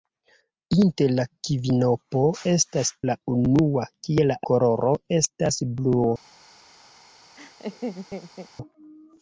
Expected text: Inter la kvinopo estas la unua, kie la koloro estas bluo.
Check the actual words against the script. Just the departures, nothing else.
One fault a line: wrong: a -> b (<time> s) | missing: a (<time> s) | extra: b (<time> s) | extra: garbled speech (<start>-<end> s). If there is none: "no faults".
no faults